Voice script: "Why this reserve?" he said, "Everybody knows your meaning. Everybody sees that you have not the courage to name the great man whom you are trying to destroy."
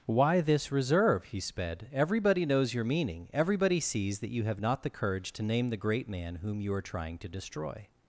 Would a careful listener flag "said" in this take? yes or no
yes